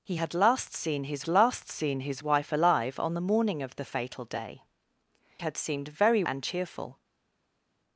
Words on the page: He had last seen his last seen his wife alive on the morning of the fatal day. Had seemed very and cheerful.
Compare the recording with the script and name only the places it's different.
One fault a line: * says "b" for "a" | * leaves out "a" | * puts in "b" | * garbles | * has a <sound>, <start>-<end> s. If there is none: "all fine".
all fine